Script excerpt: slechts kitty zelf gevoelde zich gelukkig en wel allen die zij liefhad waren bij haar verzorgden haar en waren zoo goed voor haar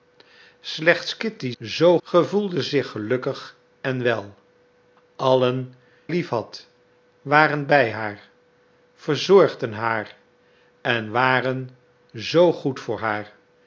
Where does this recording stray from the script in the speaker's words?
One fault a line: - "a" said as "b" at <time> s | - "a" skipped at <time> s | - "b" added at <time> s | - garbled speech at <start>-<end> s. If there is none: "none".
- "zelf" said as "zoo" at 1.6 s
- "die zij" skipped at 5.7 s